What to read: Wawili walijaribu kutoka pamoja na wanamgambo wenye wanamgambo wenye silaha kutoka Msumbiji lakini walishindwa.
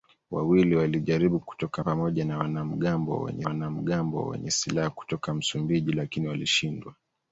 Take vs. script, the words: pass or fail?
pass